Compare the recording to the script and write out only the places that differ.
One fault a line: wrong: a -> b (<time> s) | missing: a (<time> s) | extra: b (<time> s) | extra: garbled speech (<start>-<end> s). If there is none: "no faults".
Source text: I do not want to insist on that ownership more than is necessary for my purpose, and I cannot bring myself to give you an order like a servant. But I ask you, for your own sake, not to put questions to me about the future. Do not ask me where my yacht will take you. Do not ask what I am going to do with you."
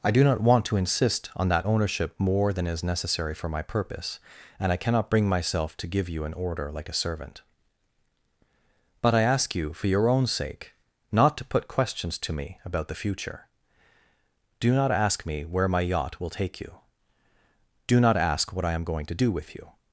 no faults